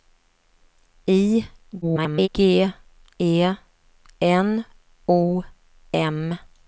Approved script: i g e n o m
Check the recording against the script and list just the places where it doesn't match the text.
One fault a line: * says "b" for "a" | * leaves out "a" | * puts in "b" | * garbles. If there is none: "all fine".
* garbles